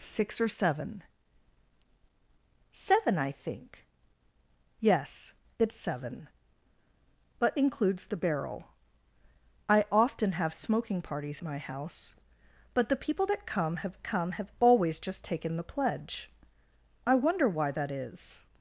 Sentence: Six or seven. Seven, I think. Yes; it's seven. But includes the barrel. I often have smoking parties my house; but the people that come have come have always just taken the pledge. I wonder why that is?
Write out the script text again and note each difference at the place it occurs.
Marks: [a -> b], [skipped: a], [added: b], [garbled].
Six or seven. Seven, I think. Yes; it's seven. But includes the barrel. I often have smoking parties my house; but the people that come have come have always just taken the pledge. I wonder why that is?